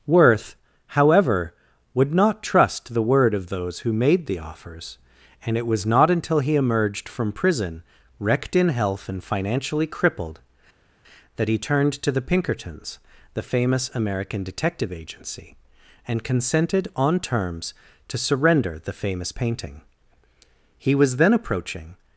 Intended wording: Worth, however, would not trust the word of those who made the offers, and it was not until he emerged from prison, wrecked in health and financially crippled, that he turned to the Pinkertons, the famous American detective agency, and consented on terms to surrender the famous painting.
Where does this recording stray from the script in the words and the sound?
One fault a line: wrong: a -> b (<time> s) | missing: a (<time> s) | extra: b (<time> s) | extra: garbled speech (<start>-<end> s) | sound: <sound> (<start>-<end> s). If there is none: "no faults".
extra: He was then approaching (20.8 s)